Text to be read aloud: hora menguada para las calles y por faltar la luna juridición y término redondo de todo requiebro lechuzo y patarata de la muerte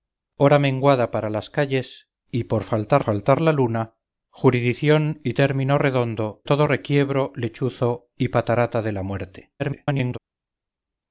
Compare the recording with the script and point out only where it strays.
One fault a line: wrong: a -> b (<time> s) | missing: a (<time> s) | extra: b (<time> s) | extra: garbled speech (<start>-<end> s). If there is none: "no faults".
extra: faltar (3.0 s)
missing: de (6.4 s)
extra: garbled speech (9.6-10.2 s)